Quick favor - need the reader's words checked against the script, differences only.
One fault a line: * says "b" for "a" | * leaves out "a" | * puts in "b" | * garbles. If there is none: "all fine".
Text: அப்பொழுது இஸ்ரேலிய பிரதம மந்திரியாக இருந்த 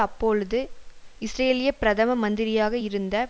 all fine